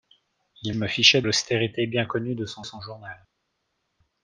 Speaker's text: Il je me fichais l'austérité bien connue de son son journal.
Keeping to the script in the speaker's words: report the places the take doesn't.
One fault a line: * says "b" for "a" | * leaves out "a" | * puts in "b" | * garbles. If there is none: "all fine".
all fine